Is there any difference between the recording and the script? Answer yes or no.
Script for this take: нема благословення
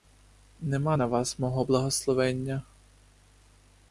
yes